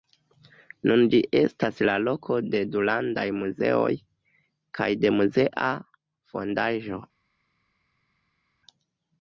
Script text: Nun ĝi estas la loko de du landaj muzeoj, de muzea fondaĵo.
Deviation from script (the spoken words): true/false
true